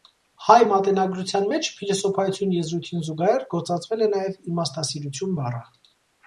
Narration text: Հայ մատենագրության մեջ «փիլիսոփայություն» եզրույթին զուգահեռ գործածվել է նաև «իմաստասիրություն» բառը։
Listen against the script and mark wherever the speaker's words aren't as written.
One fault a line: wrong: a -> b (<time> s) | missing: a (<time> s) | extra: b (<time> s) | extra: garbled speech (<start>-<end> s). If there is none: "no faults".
no faults